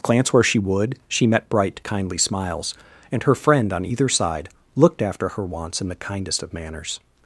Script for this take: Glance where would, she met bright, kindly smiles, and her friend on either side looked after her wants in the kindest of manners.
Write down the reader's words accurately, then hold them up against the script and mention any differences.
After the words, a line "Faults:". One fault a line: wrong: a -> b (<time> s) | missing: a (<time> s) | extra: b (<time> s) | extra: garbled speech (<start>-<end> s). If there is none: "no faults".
Glance where she would, she met bright, kindly smiles, and her friend on either side looked after her wants in the kindest of manners.
Faults:
extra: she (0.4 s)